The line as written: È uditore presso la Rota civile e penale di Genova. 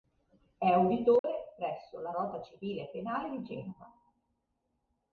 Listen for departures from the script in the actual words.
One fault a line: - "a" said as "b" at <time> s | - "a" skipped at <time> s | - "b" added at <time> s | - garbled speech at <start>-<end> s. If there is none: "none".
none